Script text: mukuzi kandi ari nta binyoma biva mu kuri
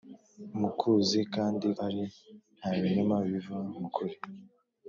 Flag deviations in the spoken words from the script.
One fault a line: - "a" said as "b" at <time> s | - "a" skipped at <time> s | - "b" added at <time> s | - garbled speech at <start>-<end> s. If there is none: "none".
none